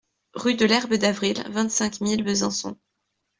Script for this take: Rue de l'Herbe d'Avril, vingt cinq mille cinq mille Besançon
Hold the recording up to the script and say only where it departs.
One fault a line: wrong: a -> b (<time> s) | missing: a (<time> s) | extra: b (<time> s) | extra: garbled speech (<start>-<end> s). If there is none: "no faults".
missing: cinq mille (2.2 s)